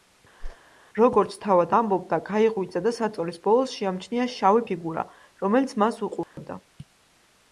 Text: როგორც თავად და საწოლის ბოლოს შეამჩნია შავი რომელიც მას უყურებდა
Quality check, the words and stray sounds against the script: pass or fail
fail